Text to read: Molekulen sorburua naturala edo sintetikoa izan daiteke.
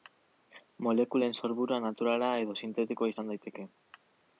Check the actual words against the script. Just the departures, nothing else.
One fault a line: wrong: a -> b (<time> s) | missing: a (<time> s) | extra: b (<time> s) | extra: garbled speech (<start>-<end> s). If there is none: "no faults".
no faults